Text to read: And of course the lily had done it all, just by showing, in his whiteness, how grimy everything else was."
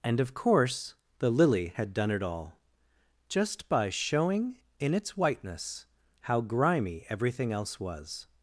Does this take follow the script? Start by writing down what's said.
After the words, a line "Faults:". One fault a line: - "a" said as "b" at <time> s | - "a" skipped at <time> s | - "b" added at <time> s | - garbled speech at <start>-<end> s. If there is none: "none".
And of course the lily had done it all, just by showing, in its whiteness, how grimy everything else was."
Faults:
- "his" said as "its" at 4.9 s